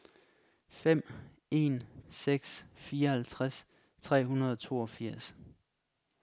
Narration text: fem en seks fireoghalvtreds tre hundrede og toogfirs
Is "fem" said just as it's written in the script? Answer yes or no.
yes